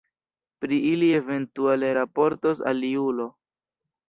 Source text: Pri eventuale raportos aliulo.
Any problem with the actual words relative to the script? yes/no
yes